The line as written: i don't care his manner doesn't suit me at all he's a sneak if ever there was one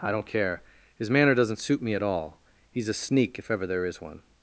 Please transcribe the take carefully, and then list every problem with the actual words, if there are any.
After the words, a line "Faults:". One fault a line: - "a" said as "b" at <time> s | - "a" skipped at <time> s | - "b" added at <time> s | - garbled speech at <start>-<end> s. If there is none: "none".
i don't care his manner doesn't suit me at all he's a sneak if ever there is one
Faults:
- "was" said as "is" at 3.8 s